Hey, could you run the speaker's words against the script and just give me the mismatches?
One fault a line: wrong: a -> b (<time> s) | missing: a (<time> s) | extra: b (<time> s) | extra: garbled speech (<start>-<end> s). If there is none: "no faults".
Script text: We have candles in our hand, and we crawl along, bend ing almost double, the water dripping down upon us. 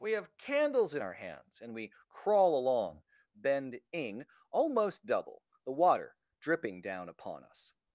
wrong: hand -> hands (1.1 s)